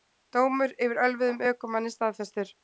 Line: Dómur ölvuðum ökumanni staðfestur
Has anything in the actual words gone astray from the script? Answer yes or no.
yes